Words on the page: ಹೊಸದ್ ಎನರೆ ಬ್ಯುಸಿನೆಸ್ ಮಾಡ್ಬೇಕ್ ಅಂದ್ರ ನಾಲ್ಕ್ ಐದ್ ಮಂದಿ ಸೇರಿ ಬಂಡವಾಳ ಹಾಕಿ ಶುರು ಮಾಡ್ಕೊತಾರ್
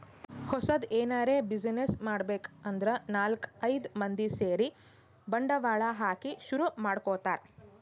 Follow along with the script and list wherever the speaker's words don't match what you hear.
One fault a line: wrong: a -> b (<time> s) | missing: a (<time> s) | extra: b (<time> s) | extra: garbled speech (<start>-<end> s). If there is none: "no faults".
no faults